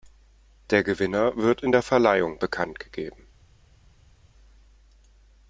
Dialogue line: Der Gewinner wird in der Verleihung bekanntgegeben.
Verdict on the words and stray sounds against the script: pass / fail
pass